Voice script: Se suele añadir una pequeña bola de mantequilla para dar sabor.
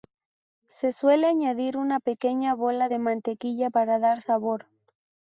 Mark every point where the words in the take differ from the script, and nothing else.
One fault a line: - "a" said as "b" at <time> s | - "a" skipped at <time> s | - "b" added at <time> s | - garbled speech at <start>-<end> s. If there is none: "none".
none